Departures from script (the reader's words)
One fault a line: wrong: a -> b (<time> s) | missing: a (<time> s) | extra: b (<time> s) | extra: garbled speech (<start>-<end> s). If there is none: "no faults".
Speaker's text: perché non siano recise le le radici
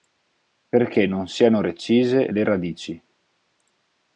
missing: le (2.4 s)